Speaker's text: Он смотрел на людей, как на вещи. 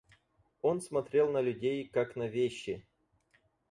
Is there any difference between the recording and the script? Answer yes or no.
no